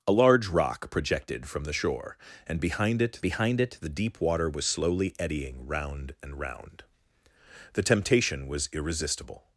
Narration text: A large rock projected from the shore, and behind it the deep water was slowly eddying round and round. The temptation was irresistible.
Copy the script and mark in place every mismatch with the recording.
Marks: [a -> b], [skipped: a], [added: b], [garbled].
A large rock projected from the shore, and behind it [added: behind it] the deep water was slowly eddying round and round. The temptation was irresistible.